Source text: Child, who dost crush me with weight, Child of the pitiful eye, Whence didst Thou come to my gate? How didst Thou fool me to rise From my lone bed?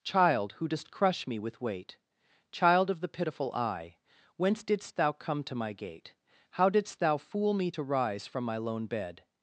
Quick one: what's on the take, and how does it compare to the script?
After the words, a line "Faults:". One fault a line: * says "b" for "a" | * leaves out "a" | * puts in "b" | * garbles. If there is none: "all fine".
Child, who dost crush me with weight, Child of the pitiful eye, Whence didst Thou come to my gate? How didst Thou fool me to rise From my lone bed?
Faults:
all fine